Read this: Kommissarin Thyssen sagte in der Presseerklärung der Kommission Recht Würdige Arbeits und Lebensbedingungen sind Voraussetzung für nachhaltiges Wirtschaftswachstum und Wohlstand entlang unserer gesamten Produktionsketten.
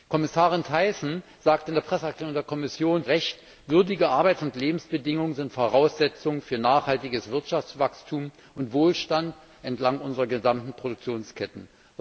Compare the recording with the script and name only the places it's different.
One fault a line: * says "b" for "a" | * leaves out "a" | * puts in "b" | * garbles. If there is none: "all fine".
all fine